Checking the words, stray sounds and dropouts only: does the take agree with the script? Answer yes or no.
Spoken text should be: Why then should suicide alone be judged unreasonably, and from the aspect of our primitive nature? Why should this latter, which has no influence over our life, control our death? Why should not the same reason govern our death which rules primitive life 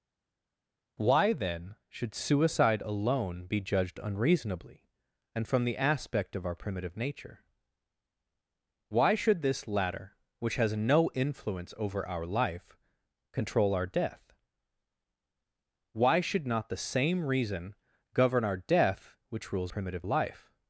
yes